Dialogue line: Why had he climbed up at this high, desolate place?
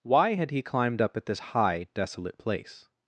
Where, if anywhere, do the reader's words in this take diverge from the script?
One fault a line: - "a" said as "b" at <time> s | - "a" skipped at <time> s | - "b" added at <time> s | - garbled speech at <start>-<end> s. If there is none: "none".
none